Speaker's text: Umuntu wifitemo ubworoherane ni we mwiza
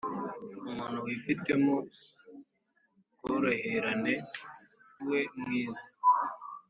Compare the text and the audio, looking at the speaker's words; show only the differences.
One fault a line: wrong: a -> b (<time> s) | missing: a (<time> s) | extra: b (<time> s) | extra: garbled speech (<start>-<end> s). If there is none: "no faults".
missing: ni (4.1 s)